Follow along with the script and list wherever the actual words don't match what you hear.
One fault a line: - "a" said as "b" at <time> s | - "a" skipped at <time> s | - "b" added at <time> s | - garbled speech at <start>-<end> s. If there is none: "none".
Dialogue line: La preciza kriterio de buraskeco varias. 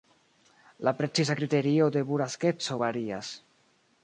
none